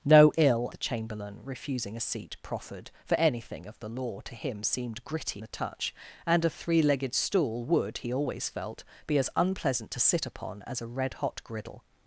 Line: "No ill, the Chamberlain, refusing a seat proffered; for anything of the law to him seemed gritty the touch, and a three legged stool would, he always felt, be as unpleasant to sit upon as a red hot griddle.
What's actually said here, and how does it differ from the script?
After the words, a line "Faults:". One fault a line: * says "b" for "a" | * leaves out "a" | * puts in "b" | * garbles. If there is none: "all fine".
"No ill, the Chamberlain, refusing a seat proffered; for anything of the law to him seemed gritty the touch, and a three legged stool would, he always felt, be as unpleasant to sit upon as a red hot griddle.
Faults:
all fine